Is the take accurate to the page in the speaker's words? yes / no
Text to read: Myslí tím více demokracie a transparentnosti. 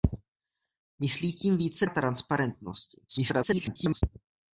no